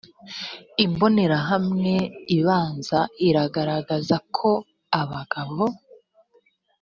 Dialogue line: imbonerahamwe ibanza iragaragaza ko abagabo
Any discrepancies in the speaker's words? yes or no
no